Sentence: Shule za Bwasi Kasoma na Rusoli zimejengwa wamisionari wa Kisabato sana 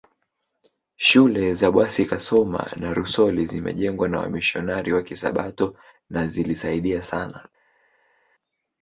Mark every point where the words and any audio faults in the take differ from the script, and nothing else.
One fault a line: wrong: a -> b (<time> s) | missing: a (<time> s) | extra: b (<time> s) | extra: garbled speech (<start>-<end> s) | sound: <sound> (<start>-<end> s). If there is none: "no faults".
extra: na (4.1 s)
extra: na zilisaidia (6.1 s)